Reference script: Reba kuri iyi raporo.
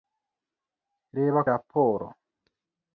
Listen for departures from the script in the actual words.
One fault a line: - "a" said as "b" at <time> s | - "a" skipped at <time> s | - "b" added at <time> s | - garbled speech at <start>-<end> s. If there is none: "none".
- "kuri iyi" skipped at 1.4 s